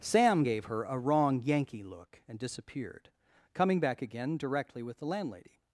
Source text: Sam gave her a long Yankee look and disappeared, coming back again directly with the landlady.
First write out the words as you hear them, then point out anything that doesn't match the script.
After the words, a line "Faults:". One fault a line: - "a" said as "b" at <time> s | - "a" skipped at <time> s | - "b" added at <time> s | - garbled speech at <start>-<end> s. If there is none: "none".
Sam gave her a wrong Yankee look and disappeared, coming back again directly with the landlady.
Faults:
- "long" said as "wrong" at 1.0 s